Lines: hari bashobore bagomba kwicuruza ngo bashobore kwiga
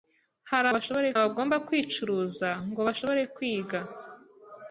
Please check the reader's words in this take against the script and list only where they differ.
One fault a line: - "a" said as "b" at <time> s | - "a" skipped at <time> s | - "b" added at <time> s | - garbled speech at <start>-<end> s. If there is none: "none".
none